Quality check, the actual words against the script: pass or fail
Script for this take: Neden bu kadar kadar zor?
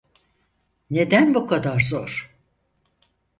fail